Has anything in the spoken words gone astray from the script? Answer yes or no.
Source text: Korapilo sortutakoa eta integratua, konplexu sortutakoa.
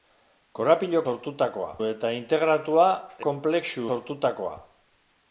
no